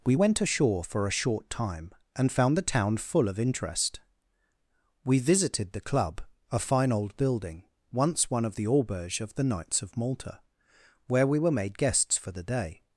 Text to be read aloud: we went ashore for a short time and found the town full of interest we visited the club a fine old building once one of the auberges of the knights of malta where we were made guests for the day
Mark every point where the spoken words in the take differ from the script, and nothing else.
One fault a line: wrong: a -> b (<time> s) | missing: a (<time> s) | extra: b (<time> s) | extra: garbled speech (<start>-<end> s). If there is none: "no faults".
no faults